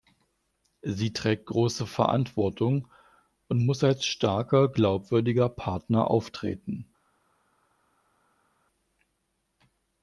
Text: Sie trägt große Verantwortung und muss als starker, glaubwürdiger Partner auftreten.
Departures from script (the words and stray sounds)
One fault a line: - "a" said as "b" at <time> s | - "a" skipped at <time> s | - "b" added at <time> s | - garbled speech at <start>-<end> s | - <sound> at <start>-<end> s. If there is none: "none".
none